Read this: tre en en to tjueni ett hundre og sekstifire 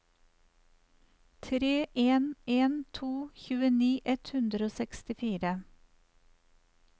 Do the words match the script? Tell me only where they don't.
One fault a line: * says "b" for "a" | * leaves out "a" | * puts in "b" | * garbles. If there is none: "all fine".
all fine